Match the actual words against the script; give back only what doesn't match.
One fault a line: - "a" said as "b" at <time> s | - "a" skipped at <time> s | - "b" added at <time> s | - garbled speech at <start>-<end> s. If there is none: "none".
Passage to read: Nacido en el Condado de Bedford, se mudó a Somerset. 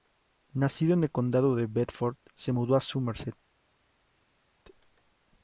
none